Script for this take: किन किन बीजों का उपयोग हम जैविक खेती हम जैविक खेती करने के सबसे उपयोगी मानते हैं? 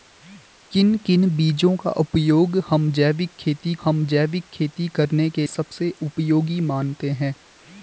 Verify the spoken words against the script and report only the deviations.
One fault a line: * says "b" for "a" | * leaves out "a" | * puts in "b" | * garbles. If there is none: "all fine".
all fine